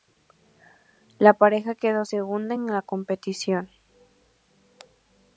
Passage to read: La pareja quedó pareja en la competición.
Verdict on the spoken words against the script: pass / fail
fail